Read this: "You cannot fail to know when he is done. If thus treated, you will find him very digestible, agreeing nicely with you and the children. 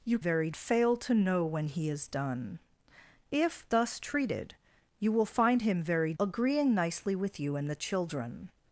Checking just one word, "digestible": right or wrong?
wrong